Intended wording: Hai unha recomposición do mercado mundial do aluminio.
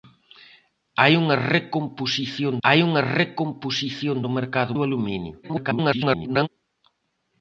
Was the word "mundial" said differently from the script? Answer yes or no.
yes